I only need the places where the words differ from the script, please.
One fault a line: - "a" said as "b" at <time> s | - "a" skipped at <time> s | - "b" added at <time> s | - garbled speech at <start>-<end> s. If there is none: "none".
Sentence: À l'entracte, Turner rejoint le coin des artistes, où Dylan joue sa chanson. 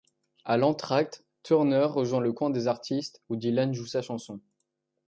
none